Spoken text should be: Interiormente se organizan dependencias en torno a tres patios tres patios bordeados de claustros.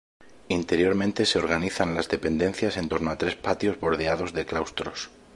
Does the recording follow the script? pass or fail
fail